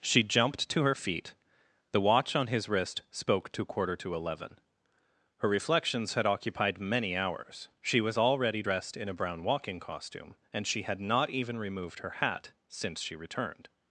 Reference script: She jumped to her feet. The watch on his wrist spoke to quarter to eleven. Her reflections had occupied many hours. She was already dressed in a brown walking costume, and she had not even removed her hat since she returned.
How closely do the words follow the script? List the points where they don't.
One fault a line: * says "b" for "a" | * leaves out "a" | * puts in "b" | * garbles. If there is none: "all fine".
all fine